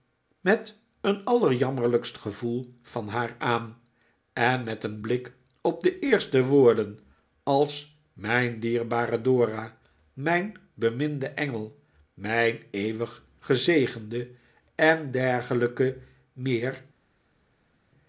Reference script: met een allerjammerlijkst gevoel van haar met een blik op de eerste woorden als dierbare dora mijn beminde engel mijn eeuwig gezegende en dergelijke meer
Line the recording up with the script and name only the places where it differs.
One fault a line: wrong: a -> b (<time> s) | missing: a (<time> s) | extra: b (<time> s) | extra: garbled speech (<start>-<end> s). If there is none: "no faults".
extra: aan en (3.4 s)
extra: mijn (8.1 s)